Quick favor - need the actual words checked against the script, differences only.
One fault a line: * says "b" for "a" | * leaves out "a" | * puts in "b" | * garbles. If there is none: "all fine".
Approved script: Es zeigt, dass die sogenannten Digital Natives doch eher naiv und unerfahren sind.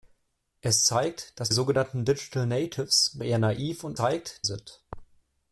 * leaves out "die"
* leaves out "doch"
* says "zeigt" for "unerfahren"